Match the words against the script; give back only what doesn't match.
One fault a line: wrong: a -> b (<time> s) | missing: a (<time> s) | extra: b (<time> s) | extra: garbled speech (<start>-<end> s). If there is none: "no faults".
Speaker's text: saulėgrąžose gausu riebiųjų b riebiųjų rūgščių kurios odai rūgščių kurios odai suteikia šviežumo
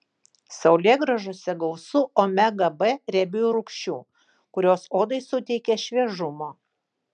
wrong: riebiųjų -> omega (2.2 s)
missing: rūgščių kurios odai (5.2 s)